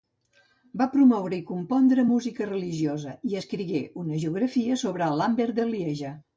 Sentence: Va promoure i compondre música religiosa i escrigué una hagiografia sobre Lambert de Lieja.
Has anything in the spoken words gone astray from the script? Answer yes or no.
no